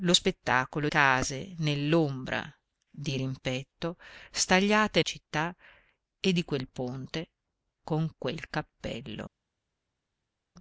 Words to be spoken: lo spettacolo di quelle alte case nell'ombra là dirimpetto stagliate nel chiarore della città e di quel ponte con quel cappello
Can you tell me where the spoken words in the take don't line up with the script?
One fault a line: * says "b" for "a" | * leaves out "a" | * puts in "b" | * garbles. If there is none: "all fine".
* leaves out "di quelle alte"
* leaves out "là"
* leaves out "nel chiarore della"